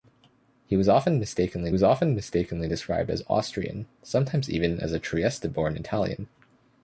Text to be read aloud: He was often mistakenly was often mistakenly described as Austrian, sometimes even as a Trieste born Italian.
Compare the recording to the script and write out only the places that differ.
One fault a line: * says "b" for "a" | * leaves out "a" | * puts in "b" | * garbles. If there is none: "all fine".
all fine